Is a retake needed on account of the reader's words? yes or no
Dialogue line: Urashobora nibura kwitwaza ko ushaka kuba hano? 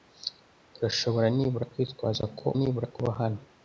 yes